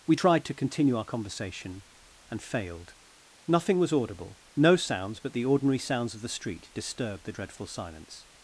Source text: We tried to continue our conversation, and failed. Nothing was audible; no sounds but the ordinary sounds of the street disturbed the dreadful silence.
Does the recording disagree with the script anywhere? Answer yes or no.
no